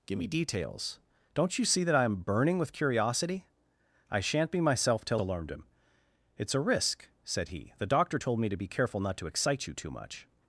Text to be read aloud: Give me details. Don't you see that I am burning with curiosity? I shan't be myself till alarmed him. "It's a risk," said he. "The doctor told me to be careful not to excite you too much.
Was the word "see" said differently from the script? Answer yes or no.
no